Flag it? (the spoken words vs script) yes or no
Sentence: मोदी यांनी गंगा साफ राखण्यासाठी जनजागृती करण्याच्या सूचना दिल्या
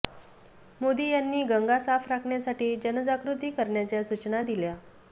no